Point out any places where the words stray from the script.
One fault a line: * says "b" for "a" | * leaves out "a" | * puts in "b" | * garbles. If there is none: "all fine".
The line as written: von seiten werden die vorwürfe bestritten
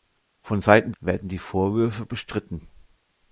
all fine